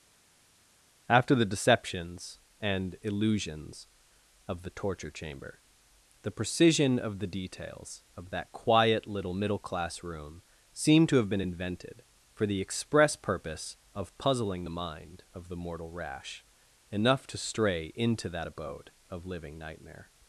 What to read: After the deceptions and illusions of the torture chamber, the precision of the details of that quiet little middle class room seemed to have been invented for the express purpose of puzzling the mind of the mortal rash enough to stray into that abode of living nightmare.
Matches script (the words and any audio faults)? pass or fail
pass